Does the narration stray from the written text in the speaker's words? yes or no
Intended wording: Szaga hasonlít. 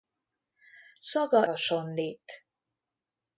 no